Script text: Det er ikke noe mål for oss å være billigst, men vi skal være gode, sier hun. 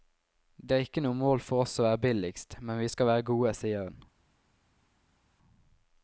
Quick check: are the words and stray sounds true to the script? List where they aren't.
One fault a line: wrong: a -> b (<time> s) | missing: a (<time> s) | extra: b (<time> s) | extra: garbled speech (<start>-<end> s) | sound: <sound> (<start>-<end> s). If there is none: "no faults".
no faults